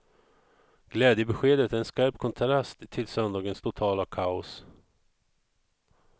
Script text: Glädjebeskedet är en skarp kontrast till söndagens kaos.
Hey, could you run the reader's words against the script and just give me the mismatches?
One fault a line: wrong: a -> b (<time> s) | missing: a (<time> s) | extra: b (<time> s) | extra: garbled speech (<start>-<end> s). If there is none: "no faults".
extra: totala (3.6 s)